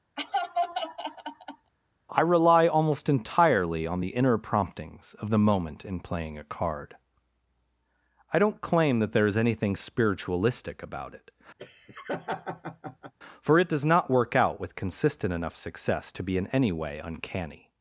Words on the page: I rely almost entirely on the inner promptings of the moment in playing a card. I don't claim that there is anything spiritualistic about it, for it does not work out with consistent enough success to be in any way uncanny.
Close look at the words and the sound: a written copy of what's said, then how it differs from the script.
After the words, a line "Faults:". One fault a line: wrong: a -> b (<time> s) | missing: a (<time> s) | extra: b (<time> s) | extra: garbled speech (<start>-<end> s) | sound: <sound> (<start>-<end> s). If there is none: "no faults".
I rely almost entirely on the inner promptings of the moment in playing a card. I don't claim that there is anything spiritualistic about it, for it does not work out with consistent enough success to be in any way uncanny.
Faults:
sound: laugh (0.2-1.7 s)
sound: laugh (11.6-13.1 s)